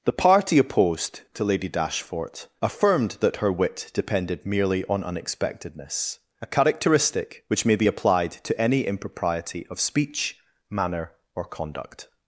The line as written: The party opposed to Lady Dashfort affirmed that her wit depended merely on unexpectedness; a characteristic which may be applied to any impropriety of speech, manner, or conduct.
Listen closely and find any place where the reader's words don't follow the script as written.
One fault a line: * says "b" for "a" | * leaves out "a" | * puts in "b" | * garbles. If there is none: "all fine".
all fine